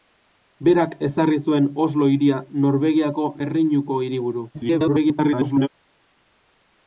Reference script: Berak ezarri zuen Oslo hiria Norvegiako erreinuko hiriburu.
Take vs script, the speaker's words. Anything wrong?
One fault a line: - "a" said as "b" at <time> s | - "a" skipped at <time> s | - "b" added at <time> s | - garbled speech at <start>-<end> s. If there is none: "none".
- garbled speech at 4.5-5.7 s